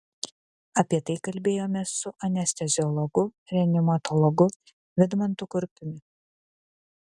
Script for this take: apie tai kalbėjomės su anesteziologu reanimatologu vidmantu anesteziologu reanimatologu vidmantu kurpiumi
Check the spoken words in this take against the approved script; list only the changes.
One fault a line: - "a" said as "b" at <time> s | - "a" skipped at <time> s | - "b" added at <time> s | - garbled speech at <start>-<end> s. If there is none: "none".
- "anesteziologu reanimatologu vidmantu" skipped at 5.5 s